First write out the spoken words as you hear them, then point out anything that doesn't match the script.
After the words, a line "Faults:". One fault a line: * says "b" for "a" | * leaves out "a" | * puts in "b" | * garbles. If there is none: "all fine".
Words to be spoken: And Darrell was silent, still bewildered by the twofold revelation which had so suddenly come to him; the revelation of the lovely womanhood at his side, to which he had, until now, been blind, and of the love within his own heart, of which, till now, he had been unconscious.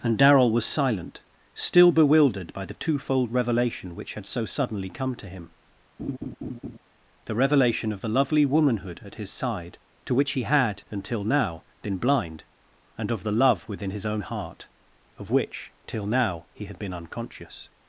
And Darrell was silent, still bewildered by the twofold revelation which had so suddenly come to him; the revelation of the lovely womanhood at his side, to which he had, until now, been blind, and of the love within his own heart, of which, till now, he had been unconscious.
Faults:
all fine